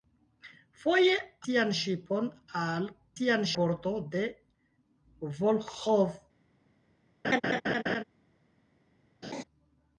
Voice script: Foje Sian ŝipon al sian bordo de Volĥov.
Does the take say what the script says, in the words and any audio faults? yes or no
no